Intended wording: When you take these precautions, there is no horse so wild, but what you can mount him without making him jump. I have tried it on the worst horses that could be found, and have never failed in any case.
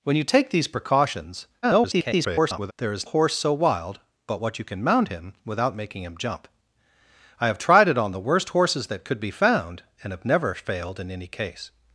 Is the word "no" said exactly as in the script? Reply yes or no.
no